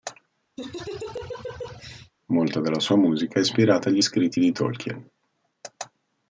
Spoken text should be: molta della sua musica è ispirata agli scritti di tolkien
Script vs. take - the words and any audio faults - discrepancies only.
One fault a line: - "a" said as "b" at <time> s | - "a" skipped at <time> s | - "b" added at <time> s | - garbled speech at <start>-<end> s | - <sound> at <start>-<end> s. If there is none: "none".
- laugh at 0.6-2.1 s